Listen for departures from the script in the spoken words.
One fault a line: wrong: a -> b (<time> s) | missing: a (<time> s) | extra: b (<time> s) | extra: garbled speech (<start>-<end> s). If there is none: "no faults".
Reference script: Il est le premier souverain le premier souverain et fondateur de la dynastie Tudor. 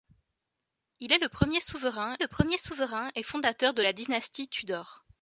no faults